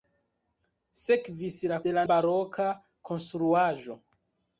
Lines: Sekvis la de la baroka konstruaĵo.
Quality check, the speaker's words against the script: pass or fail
pass